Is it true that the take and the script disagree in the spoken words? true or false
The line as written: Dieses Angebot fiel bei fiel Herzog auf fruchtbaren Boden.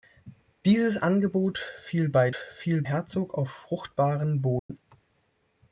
false